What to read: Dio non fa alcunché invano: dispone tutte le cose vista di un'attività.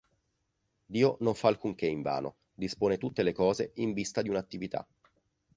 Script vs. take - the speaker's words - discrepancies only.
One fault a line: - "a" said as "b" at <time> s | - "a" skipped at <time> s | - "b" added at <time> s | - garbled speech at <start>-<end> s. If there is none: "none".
- "in" added at 3.8 s